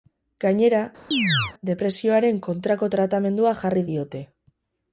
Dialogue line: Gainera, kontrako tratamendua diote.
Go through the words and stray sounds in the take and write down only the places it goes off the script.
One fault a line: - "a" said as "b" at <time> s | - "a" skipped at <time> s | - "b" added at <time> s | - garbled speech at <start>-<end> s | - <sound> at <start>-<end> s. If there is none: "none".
- chirp at 1.1-1.5 s
- "depresioaren" added at 1.7 s
- "jarri" added at 3.7 s